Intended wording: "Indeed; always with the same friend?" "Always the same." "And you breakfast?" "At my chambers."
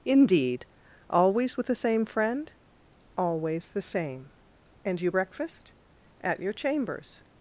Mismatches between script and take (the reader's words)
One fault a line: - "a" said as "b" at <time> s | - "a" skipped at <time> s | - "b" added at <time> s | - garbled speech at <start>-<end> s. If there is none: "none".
- "my" said as "your" at 6.4 s